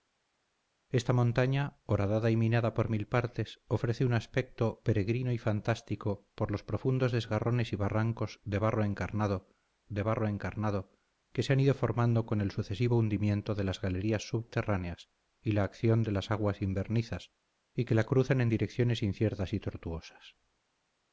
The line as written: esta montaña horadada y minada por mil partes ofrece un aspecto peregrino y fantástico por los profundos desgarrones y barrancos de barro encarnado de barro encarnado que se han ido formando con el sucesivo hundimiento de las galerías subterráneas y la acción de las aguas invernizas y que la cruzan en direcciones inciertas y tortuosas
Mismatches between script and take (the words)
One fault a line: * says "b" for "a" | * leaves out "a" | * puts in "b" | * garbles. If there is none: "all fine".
all fine